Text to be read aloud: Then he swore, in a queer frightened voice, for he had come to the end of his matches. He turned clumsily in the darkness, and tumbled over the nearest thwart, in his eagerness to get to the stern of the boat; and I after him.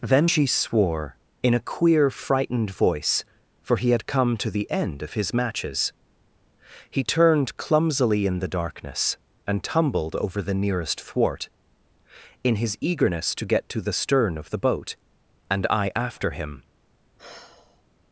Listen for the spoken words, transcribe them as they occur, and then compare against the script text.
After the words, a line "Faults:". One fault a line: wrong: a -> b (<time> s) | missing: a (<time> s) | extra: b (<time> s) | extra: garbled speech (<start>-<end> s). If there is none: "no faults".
Then she swore, in a queer frightened voice, for he had come to the end of his matches. He turned clumsily in the darkness, and tumbled over the nearest thwart, in his eagerness to get to the stern of the boat; and I after him.
Faults:
wrong: he -> she (0.2 s)